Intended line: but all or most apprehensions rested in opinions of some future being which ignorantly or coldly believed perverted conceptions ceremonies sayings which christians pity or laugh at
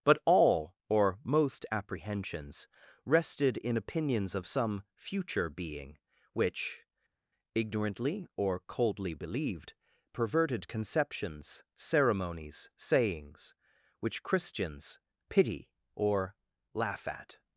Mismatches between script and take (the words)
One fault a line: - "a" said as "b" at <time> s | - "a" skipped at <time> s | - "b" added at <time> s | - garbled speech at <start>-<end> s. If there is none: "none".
none